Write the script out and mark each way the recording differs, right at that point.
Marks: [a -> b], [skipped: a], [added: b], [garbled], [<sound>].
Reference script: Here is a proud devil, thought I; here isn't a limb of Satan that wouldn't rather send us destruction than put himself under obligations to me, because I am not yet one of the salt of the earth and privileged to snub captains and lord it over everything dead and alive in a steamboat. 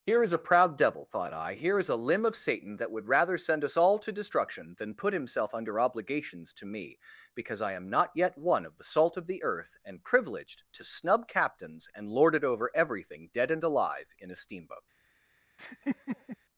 Here is a proud devil, thought I; here [isn't -> is] a limb of Satan that [wouldn't -> would] rather send us [added: all to] destruction than put himself under obligations to me, because I am not yet one of the salt of the earth and privileged to snub captains and lord it over everything dead and alive in a steamboat. [laugh]